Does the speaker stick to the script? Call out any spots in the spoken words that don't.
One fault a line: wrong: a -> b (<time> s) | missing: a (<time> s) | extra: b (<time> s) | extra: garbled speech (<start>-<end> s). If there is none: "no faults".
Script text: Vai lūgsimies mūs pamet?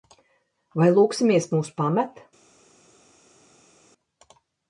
no faults